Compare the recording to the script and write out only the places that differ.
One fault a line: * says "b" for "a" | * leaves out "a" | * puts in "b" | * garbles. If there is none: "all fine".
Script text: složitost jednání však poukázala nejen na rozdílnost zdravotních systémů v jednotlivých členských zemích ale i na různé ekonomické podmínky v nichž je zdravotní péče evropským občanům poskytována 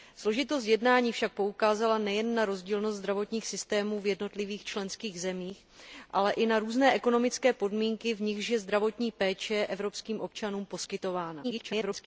* garbles